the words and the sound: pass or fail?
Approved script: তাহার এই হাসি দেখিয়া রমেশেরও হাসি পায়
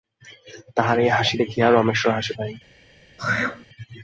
fail